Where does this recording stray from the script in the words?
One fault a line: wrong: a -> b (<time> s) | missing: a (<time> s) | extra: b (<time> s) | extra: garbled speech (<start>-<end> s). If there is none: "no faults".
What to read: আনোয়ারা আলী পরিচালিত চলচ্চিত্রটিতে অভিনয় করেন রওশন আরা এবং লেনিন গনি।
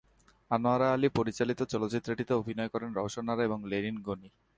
no faults